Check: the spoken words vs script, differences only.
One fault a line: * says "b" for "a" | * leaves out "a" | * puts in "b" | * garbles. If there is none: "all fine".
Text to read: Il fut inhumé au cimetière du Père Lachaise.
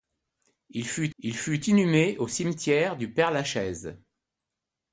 * puts in "il fut"